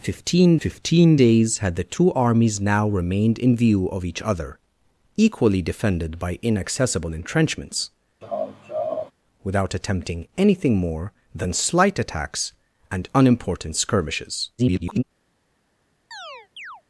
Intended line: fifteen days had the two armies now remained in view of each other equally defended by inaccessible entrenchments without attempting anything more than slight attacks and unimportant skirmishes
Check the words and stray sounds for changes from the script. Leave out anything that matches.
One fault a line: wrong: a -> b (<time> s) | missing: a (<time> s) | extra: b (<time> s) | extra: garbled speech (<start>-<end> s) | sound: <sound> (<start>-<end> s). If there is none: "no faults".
extra: fifteen (0.6 s)
sound: laugh (8.2-9.1 s)
extra: garbled speech (14.6-15.0 s)
sound: chirp (16.1-16.8 s)